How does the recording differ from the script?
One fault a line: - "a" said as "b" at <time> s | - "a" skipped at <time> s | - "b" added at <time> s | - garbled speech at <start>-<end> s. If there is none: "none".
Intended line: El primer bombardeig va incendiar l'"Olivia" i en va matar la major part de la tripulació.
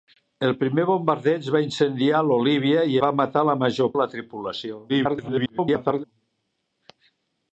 - "en" skipped at 3.0 s
- "part" skipped at 3.9 s
- garbled speech at 4.9-6.0 s